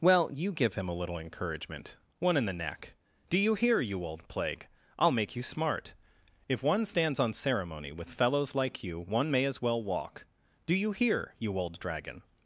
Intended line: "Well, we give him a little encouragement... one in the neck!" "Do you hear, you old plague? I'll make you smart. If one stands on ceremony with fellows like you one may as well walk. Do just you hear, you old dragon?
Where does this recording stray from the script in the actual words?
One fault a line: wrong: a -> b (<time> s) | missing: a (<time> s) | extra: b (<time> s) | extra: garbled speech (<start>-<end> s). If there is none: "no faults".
wrong: we -> you (0.3 s)
missing: just (10.7 s)